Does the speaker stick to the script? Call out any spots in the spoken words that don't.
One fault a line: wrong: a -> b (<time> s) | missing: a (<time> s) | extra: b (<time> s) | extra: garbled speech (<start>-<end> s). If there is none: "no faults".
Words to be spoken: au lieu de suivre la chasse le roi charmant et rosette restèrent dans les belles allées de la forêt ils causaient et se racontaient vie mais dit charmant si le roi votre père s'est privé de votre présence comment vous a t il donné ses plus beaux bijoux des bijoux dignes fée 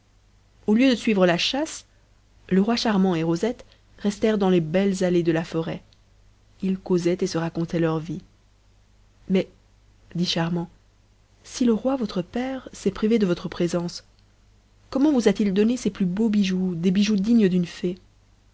extra: leur (7.8 s)
extra: d'une (17.5 s)